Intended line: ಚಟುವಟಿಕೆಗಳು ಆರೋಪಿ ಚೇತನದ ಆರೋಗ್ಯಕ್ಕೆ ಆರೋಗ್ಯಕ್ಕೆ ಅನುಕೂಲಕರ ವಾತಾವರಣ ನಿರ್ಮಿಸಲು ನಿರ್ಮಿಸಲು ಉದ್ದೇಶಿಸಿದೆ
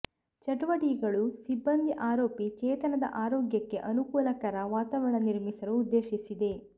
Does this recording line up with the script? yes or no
no